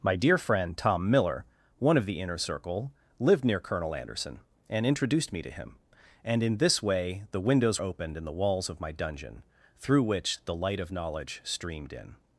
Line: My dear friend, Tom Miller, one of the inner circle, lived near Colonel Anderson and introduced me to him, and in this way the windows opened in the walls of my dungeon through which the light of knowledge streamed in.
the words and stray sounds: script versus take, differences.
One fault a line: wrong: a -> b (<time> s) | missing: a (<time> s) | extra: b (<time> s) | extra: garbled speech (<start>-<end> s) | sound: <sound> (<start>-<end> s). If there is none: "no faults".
no faults